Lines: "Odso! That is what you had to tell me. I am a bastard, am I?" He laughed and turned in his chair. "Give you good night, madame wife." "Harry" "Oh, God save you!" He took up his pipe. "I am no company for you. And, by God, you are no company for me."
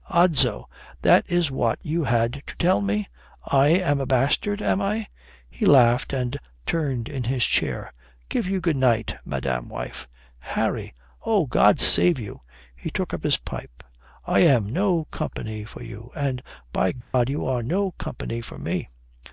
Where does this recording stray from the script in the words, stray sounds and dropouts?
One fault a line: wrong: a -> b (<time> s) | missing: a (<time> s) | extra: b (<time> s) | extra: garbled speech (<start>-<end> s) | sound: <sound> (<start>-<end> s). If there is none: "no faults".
sound: dropout (17.0-17.1 s)